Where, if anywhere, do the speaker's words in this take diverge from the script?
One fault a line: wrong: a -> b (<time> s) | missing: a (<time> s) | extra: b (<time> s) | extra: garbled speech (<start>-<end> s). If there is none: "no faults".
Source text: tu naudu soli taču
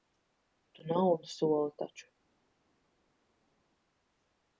no faults